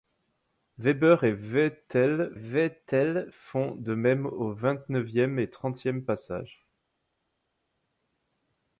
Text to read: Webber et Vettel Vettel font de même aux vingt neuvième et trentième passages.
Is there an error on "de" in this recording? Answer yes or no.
no